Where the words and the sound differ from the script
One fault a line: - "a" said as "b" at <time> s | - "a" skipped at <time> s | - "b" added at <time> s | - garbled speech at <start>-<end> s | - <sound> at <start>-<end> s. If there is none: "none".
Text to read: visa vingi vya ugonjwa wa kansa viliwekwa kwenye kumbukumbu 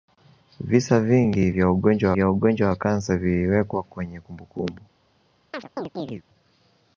- "vya ugonjwa" added at 2.1 s
- chirp at 5.5-6.2 s